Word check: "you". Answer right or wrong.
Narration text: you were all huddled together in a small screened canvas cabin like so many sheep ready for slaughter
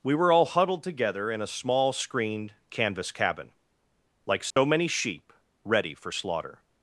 wrong